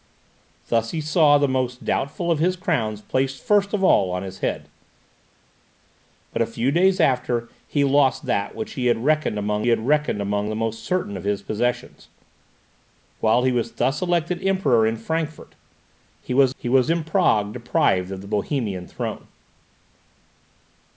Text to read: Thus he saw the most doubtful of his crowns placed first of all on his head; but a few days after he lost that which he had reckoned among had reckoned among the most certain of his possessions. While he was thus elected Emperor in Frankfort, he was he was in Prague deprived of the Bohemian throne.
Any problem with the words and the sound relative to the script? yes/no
no